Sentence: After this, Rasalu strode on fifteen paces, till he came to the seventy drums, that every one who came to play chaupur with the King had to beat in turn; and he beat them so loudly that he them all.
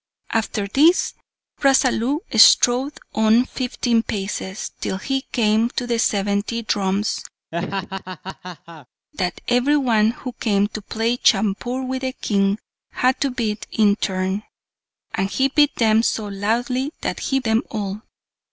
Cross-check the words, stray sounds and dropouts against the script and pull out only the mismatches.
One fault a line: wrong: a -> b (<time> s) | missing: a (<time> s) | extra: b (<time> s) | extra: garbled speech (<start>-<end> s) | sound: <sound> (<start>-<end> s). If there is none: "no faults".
sound: laugh (7.5-8.9 s)